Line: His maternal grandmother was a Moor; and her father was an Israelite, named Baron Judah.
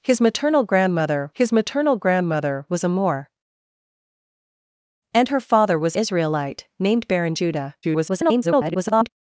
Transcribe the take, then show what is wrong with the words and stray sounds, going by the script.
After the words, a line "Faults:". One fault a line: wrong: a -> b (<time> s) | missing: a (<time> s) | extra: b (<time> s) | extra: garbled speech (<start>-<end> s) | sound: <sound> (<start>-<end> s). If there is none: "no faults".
His maternal grandmother his maternal grandmother was a Moor; and her father was Israelite, named Baron Judah. [garbled]
Faults:
extra: his maternal grandmother (1.3 s)
missing: an (6.0 s)
extra: garbled speech (7.8-9.1 s)